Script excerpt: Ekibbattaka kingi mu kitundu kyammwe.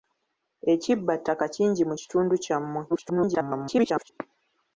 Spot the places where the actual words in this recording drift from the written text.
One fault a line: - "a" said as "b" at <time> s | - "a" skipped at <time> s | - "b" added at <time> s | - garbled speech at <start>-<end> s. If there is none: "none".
- garbled speech at 2.9-4.1 s